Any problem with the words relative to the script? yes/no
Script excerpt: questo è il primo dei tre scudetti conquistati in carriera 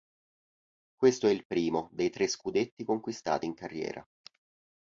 no